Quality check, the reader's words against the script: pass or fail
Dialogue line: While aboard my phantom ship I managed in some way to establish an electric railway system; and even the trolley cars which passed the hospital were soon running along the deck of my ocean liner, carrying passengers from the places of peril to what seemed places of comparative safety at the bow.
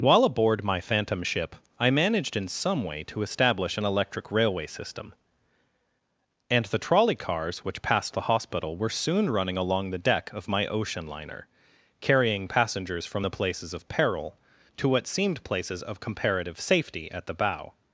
fail